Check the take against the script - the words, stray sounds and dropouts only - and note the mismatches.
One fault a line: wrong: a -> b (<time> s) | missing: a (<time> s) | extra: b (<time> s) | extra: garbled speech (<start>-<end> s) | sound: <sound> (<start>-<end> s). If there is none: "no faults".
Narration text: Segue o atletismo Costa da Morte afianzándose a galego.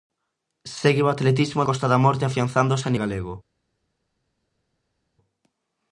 no faults